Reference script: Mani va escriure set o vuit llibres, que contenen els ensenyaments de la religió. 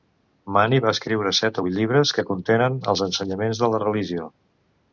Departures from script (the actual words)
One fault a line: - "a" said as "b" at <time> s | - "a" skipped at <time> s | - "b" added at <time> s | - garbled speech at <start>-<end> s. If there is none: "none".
none